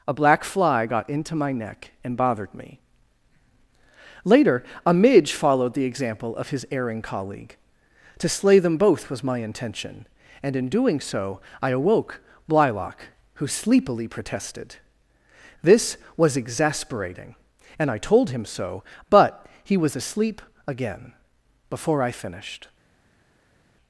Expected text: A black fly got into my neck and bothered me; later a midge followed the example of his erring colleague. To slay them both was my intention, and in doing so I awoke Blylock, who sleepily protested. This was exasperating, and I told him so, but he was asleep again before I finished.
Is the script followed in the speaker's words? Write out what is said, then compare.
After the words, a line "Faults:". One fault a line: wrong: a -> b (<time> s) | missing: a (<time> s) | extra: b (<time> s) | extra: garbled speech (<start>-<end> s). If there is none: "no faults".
A black fly got into my neck and bothered me; later a midge followed the example of his erring colleague. To slay them both was my intention, and in doing so I awoke Blylock, who sleepily protested. This was exasperating, and I told him so, but he was asleep again before I finished.
Faults:
no faults